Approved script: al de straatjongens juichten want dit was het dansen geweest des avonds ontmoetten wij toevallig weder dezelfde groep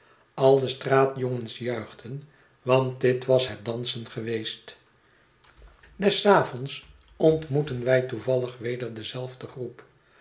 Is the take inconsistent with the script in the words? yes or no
no